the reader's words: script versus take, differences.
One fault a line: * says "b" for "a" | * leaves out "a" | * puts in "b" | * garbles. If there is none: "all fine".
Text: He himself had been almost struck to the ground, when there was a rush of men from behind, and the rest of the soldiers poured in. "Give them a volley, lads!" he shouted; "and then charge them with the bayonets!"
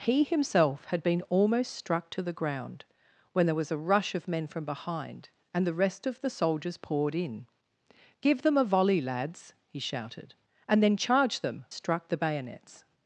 * says "struck" for "with"